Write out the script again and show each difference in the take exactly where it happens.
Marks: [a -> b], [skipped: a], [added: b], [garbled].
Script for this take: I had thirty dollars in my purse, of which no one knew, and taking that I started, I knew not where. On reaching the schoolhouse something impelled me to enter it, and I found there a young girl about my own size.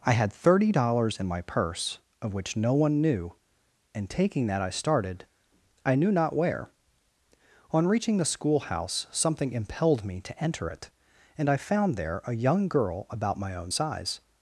I had thirty dollars in my purse, of which no one knew, and taking that I started, I knew not where. On reaching the schoolhouse something impelled me to enter it, and I found there a young girl about my own size.